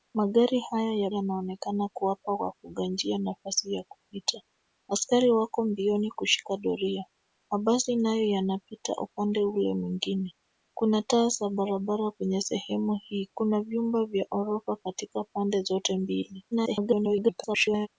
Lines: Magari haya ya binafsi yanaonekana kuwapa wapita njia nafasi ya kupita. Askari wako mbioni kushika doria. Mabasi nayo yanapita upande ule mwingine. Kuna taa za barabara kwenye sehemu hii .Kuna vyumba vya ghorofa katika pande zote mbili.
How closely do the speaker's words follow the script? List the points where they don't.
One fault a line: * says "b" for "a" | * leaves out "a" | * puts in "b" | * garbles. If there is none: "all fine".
* leaves out "binafsi"
* garbles